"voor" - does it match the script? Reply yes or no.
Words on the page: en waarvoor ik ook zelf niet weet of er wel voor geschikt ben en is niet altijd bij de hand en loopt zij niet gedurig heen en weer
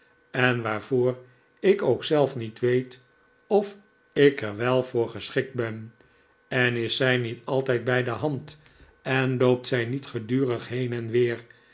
yes